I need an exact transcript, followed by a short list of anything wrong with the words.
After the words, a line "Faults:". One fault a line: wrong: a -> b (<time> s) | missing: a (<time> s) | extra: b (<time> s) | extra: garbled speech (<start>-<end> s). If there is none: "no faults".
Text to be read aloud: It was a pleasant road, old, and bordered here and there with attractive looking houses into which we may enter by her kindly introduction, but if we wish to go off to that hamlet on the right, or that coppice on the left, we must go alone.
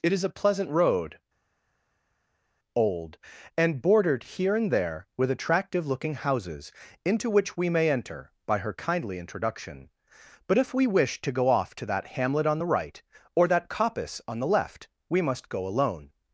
It is a pleasant road, old, and bordered here and there with attractive looking houses into which we may enter by her kindly introduction, but if we wish to go off to that hamlet on the right, or that coppice on the left, we must go alone.
Faults:
wrong: was -> is (0.1 s)